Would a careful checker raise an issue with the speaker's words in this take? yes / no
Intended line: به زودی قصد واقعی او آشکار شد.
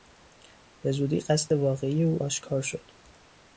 no